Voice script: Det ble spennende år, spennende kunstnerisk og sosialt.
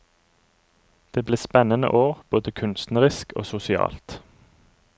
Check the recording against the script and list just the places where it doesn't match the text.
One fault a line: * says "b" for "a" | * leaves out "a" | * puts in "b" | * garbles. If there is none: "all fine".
* says "både" for "spennende"